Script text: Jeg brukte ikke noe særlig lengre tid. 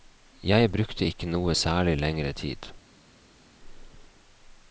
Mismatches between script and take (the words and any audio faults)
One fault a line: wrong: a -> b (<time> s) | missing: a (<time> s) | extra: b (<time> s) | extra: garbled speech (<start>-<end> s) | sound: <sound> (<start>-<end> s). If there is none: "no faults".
no faults